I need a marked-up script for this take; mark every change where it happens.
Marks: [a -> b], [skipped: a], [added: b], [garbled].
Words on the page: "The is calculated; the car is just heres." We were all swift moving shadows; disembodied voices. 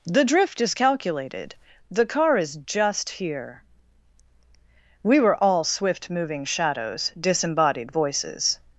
"The [added: drift] is calculated; the car is just [heres." -> here] We were all swift moving shadows; disembodied voices.